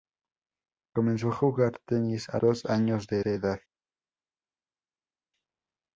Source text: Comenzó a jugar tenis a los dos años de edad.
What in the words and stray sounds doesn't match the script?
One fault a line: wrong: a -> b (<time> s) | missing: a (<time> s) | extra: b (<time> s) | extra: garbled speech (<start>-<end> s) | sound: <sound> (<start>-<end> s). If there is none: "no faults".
missing: los (2.4 s)
extra: de (3.2 s)